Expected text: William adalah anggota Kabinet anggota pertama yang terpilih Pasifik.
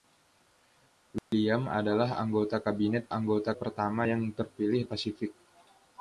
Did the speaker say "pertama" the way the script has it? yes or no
yes